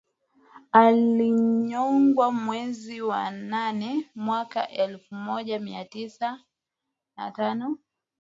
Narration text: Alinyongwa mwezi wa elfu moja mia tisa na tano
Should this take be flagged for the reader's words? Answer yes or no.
yes